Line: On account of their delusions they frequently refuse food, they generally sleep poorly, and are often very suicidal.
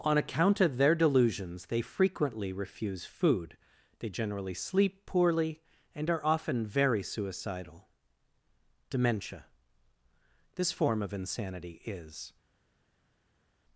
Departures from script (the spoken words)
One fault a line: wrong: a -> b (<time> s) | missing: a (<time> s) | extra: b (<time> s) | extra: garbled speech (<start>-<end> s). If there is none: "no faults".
extra: Dementia This form of insanity is (8.9 s)